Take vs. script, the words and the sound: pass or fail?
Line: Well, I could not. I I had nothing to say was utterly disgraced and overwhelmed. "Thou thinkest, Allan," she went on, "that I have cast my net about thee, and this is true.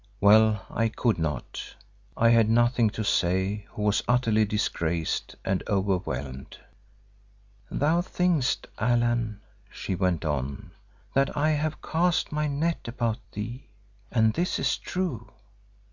fail